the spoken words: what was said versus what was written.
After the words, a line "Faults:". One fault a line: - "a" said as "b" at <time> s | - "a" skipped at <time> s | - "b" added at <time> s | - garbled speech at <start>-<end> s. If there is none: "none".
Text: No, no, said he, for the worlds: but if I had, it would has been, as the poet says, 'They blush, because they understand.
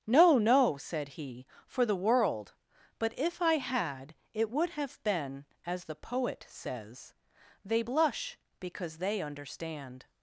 No, no, said he, for the world: but if I had, it would have been, as the poet says, 'They blush, because they understand.
Faults:
- "worlds" said as "world" at 1.9 s
- "has" said as "have" at 4.7 s